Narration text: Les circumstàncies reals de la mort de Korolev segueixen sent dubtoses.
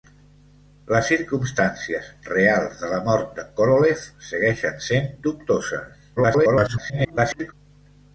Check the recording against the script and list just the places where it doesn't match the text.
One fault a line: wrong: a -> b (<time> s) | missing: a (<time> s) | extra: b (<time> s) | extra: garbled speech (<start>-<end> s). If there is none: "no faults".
extra: garbled speech (6.2-7.5 s)